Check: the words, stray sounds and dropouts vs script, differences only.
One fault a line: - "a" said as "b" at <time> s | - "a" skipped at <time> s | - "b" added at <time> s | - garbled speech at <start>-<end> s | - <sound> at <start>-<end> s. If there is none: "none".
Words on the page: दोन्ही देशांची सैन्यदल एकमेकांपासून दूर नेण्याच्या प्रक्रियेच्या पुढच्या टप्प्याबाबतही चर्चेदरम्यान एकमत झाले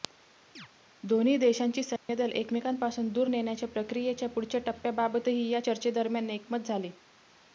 - chirp at 0.5-0.7 s
- dropout at 2.0-2.1 s
- "या" added at 5.5 s